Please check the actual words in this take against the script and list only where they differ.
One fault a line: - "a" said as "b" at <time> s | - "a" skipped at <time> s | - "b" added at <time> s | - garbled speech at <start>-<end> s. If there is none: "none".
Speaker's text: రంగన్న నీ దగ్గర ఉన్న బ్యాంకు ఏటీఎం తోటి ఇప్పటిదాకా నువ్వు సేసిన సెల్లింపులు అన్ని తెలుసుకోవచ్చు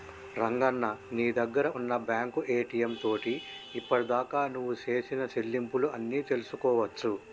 none